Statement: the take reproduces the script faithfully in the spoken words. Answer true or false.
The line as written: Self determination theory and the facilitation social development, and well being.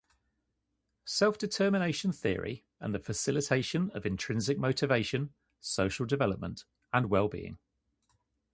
false